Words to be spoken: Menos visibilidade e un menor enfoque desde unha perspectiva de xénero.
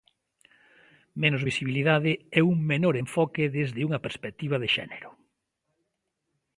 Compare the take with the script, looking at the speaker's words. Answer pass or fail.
pass